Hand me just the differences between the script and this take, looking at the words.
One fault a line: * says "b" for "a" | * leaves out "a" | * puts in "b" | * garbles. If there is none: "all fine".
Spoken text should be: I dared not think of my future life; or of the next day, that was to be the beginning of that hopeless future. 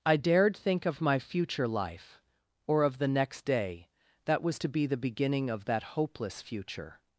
* leaves out "not"